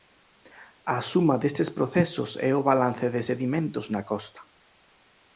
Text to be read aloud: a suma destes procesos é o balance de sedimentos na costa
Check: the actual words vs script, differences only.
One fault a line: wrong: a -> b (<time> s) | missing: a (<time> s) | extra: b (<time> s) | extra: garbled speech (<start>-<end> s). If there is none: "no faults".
no faults